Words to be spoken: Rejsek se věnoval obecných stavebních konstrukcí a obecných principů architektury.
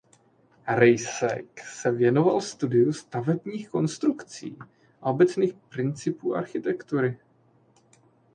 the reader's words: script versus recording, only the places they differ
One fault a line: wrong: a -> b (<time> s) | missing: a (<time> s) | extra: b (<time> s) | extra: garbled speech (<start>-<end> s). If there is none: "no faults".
wrong: obecných -> studiu (2.4 s)